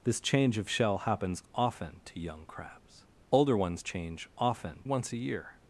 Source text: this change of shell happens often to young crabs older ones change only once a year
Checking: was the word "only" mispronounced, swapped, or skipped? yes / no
yes